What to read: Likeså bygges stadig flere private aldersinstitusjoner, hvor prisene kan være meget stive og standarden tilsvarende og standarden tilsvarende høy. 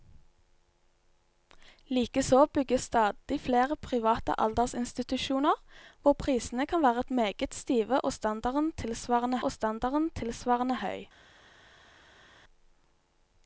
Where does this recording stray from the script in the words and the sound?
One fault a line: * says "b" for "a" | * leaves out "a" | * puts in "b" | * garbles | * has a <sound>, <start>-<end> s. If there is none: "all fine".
all fine